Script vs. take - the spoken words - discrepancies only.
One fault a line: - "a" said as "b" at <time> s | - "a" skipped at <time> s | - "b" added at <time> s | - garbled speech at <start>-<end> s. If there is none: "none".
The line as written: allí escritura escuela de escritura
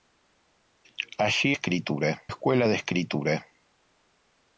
none